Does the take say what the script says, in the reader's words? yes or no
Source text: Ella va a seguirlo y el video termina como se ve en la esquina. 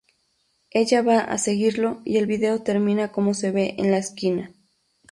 yes